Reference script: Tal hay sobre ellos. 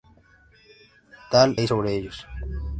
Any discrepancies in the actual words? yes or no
no